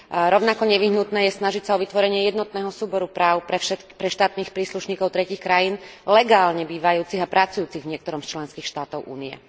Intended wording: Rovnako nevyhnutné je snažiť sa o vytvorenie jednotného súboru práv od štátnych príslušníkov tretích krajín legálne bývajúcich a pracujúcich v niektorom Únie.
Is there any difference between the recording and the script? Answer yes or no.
yes